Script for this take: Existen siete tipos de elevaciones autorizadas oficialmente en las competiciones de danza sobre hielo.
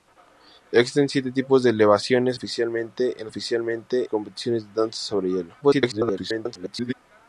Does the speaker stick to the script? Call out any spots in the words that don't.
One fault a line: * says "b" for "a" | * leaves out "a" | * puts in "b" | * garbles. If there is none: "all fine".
* leaves out "autorizadas"
* says "oficialmente" for "las"
* garbles